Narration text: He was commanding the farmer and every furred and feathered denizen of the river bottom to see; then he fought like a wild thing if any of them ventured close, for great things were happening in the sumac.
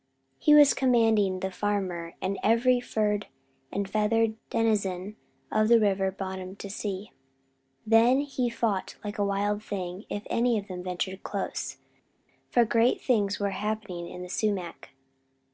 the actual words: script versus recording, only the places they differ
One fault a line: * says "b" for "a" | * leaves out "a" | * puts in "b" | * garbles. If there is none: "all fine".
all fine